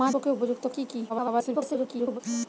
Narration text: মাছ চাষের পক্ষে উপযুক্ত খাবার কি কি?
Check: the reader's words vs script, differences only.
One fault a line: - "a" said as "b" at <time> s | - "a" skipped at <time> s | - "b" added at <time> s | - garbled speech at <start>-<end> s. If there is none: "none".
- "চাষের" skipped at 0.1 s
- "খাবার" skipped at 0.6 s
- garbled speech at 1.1-2.2 s